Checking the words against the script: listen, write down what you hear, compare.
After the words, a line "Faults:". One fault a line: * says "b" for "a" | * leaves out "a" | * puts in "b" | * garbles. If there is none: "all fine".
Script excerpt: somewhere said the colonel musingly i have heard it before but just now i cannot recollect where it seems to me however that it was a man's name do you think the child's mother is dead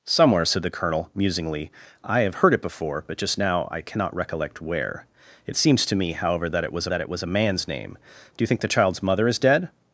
somewhere said the colonel musingly i have heard it before but just now i cannot recollect where it seems to me however that it was that it was a man's name do you think the child's mother is dead
Faults:
* puts in "that it was"